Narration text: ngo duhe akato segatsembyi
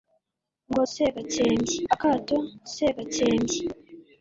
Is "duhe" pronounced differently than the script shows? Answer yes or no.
yes